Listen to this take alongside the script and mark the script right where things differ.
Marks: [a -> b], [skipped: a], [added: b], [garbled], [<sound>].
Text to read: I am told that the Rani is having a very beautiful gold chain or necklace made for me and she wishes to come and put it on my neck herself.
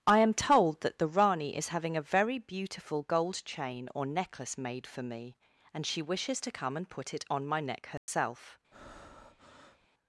I am told that the Rani is having a very beautiful gold chain or necklace made for me and she wishes to come and put it on my neck herself. [dropout] [breath]